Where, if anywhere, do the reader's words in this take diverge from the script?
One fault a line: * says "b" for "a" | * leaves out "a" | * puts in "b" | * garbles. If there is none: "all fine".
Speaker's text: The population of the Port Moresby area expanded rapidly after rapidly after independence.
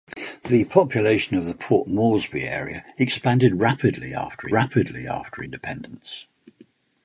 all fine